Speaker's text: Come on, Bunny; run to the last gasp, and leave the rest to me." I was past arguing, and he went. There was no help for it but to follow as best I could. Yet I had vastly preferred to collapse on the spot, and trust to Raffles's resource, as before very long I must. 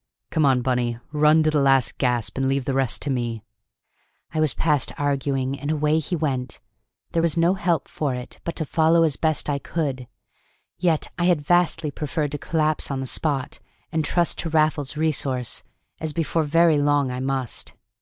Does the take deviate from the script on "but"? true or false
false